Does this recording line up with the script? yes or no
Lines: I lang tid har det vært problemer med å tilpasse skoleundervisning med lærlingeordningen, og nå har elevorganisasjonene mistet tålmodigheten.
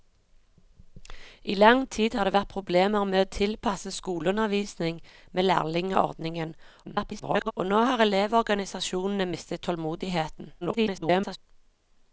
no